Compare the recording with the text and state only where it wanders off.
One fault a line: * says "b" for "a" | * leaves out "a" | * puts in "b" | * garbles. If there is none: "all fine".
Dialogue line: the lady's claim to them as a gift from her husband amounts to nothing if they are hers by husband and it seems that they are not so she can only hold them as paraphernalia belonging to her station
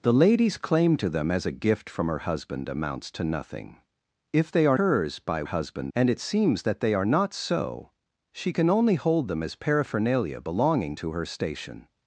all fine